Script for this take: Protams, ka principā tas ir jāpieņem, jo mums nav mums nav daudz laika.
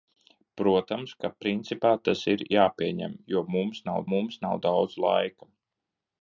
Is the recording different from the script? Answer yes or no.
no